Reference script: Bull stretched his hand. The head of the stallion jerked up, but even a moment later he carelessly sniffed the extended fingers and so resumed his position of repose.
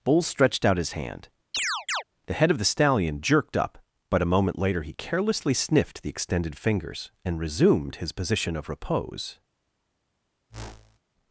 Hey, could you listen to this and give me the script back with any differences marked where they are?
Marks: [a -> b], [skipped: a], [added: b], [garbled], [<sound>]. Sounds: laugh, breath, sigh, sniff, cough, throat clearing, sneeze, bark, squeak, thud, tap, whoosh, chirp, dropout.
Bull stretched [added: out] his hand. [chirp] The head of the stallion jerked up, but [skipped: even] a moment later he carelessly sniffed the extended fingers and [skipped: so] resumed his position of repose. [whoosh]